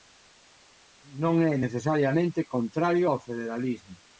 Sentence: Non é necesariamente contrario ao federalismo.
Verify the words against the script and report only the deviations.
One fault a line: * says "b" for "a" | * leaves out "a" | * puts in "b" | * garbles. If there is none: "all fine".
all fine